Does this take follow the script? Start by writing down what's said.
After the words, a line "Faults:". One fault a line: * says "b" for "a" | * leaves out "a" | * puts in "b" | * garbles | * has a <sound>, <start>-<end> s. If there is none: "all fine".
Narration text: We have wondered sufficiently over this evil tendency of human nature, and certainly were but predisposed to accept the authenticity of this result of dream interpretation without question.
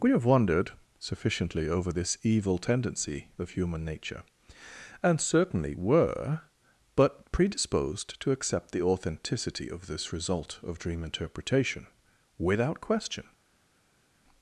We have wondered sufficiently over this evil tendency of human nature, and certainly were but predisposed to accept the authenticity of this result of dream interpretation without question.
Faults:
all fine